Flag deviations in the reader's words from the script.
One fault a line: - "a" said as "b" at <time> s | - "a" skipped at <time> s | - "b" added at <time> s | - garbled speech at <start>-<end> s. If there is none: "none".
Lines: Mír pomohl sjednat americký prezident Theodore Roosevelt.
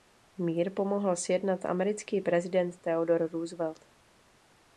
none